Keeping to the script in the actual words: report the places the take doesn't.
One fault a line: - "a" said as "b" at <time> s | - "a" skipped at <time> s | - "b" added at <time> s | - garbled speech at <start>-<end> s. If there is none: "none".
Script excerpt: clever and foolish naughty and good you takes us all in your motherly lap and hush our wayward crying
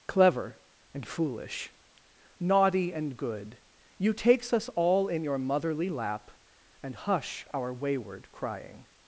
none